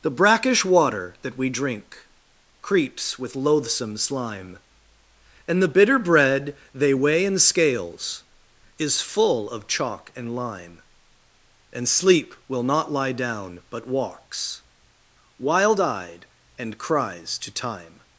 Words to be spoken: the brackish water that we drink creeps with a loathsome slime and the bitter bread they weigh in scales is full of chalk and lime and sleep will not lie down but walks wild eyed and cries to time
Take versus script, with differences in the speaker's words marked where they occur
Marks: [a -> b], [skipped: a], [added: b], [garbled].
the brackish water that we drink creeps with [skipped: a] loathsome slime and the bitter bread they weigh in scales is full of chalk and lime and sleep will not lie down but walks wild eyed and cries to time